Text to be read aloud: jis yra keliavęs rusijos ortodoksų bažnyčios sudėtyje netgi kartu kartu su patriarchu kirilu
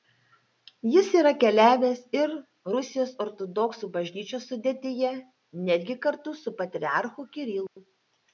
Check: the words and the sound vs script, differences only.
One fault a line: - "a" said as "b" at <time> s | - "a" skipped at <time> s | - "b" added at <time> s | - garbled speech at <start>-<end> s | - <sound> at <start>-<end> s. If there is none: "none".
- "ir" added at 2.2 s
- "kartu" skipped at 6.4 s
- dropout at 7.7-7.8 s